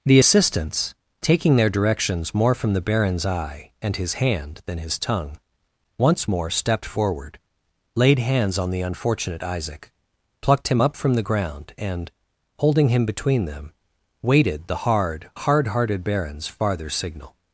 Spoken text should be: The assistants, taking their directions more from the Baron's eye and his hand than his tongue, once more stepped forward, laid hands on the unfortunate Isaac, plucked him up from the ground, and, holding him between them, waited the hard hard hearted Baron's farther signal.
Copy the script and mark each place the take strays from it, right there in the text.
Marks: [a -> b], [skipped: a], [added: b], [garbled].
The assistants, taking their directions more from the Baron's eye and his hand than his tongue, once more stepped forward, laid hands on the unfortunate Isaac, plucked him up from the ground, and, holding him between them, waited the hard hard hearted Baron's farther signal.